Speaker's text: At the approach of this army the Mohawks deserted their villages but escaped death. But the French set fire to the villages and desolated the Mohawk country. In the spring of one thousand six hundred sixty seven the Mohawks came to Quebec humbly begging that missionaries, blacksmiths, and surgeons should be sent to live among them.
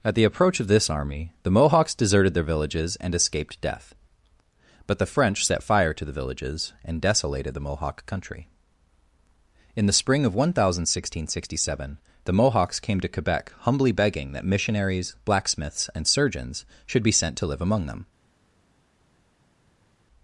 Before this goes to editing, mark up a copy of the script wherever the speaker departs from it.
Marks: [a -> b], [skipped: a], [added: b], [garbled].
At the approach of this army the Mohawks deserted their villages [but -> and] escaped death. But the French set fire to the villages and desolated the Mohawk country. In the spring of one thousand six hundred sixty seven the Mohawks came to Quebec humbly begging that missionaries, blacksmiths, and surgeons should be sent to live among them.